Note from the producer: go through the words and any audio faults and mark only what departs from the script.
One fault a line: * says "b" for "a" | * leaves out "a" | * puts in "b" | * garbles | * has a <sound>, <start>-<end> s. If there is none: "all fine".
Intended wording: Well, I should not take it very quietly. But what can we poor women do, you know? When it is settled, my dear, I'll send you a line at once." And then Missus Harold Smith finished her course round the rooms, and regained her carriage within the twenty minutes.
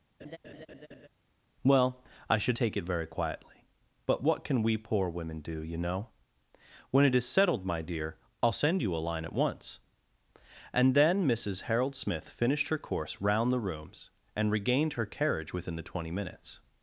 * has a laugh, 0.2-1.1 s
* leaves out "not"